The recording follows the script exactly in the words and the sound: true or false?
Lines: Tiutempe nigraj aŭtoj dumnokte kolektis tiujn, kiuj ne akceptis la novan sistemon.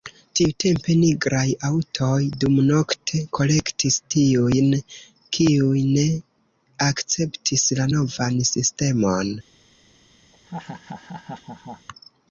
false